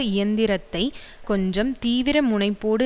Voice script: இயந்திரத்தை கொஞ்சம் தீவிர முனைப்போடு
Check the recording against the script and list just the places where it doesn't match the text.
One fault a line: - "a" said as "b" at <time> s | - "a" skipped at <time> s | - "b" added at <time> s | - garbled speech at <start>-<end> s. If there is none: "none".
none